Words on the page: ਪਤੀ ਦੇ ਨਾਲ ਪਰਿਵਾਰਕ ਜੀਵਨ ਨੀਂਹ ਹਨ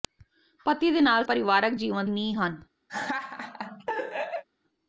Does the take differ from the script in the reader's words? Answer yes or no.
no